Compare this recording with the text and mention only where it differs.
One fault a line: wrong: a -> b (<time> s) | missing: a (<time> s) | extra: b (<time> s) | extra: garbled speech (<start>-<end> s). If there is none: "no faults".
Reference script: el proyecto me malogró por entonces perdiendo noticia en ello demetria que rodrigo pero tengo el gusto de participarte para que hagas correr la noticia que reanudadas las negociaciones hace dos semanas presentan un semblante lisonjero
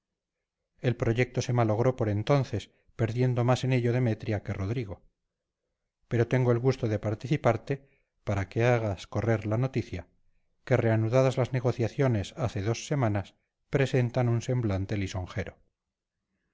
wrong: me -> se (1.4 s)
wrong: noticia -> más (3.4 s)